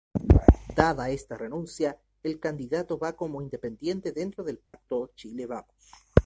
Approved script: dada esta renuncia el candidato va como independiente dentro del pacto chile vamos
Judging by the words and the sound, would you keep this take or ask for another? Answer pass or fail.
fail